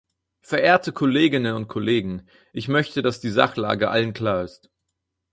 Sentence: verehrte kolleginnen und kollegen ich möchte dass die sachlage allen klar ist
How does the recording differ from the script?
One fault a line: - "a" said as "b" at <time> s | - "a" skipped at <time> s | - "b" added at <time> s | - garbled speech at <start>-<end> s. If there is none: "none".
none